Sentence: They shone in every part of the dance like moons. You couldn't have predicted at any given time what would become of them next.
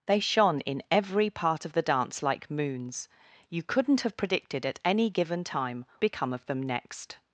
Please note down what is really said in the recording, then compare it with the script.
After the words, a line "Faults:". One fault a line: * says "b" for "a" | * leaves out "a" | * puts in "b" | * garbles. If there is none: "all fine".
They shone in every part of the dance like moons. You couldn't have predicted at any given time become of them next.
Faults:
* leaves out "what would"